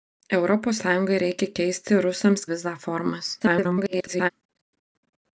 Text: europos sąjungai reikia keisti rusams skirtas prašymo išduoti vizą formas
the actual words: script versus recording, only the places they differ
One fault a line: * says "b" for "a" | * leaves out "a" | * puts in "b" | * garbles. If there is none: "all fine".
* leaves out "skirtas prašymo išduoti"
* garbles